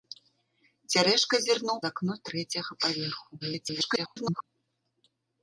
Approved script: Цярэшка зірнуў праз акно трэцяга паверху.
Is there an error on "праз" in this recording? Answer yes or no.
yes